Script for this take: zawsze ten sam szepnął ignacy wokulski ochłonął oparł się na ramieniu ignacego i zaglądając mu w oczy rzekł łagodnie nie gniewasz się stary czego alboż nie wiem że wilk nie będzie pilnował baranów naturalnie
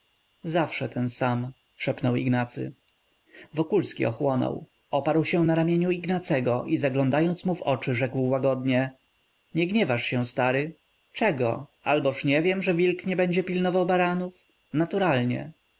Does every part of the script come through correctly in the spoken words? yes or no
yes